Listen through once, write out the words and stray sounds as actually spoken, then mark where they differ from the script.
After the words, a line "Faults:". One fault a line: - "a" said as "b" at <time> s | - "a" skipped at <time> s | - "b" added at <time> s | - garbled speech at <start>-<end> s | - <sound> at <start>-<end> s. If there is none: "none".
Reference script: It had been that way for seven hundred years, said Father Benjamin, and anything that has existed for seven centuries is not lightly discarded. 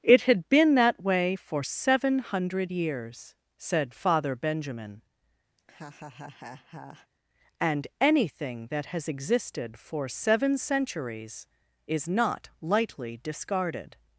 It had been that way for seven hundred years, said Father Benjamin, and anything that has existed for seven centuries is not lightly discarded.
Faults:
- laugh at 5.6-7.1 s